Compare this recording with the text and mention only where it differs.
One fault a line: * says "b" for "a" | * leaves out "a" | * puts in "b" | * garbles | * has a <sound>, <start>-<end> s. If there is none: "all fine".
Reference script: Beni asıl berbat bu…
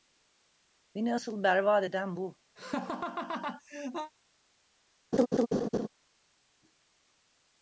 * puts in "eden"
* has a laugh, 2.6-4.1 s
* has a laugh, 5.1-5.9 s